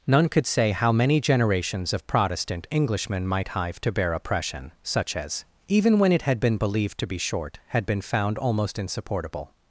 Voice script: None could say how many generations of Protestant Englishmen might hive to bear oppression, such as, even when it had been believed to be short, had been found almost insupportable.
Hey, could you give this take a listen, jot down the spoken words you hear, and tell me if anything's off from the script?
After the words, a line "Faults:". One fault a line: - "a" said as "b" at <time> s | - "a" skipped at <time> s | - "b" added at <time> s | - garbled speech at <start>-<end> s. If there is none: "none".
None could say how many generations of Protestant Englishmen might hive to bear oppression, such as, even when it had been believed to be short, had been found almost insupportable.
Faults:
none